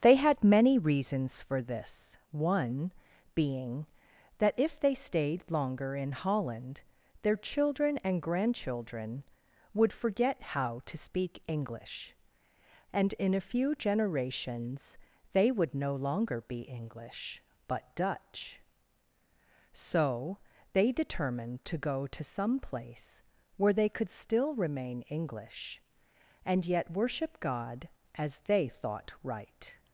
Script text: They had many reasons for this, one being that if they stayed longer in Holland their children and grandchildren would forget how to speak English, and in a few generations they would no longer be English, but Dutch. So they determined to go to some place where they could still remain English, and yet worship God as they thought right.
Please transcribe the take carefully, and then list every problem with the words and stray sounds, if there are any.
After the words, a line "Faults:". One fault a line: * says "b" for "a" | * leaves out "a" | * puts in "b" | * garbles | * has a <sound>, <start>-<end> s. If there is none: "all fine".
They had many reasons for this, one being that if they stayed longer in Holland their children and grandchildren would forget how to speak English, and in a few generations they would no longer be English, but Dutch. So they determined to go to some place where they could still remain English, and yet worship God as they thought right.
Faults:
all fine